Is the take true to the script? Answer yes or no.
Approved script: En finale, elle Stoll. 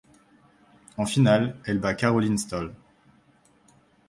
no